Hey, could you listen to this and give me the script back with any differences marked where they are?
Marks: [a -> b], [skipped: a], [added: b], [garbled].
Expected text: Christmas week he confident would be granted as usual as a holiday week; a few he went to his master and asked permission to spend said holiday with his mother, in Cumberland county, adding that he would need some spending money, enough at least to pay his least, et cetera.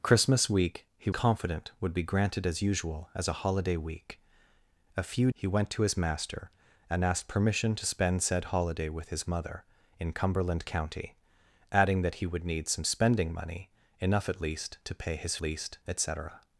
Christmas week he confident would be granted as usual as a holiday week; a few he went to his master and asked permission to spend said holiday with his mother, in Cumberland county, adding that he would need some spending money, enough at least to pay his least, et cetera.